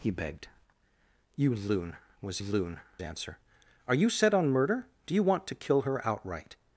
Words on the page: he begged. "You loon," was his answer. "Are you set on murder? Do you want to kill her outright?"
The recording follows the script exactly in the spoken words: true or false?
false